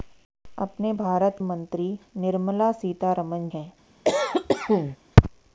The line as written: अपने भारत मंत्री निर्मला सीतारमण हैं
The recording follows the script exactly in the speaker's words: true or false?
true